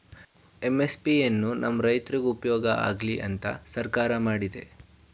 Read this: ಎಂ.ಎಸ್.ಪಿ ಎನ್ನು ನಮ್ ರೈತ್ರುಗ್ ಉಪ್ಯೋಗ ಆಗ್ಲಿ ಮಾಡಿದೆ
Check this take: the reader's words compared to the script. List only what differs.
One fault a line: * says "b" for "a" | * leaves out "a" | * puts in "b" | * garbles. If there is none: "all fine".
* puts in "ಅಂತ ಸರ್ಕಾರ"